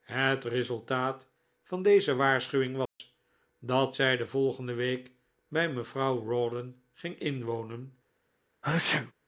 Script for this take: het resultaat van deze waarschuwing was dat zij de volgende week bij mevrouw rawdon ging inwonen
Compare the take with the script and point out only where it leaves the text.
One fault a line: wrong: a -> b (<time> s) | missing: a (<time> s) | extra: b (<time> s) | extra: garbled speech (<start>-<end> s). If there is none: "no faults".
no faults